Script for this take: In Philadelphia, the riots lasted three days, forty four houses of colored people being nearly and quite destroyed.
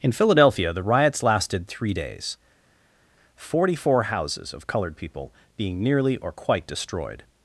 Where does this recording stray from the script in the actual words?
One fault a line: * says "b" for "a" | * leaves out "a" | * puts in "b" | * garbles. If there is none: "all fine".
* says "or" for "and"